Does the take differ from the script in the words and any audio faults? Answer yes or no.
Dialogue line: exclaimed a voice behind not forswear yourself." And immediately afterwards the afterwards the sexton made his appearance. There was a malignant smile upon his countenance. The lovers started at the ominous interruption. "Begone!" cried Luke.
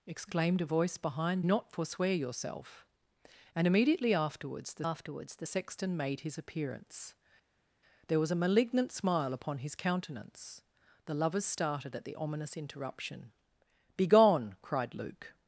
no